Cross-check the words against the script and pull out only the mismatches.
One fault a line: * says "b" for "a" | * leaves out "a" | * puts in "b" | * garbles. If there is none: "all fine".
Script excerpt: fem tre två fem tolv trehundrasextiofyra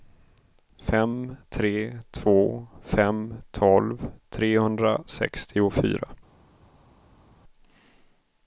all fine